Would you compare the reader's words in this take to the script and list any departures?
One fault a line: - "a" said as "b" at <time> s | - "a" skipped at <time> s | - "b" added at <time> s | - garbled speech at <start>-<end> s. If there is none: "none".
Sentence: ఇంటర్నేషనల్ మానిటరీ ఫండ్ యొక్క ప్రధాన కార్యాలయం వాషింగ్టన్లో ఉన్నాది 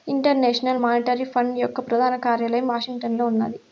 none